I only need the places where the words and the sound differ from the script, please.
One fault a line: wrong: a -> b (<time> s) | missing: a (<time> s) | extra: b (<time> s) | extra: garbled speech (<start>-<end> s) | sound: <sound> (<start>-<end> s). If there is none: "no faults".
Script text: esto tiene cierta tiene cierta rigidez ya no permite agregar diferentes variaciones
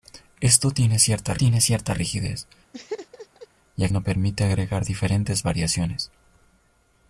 sound: laugh (2.7-3.5 s)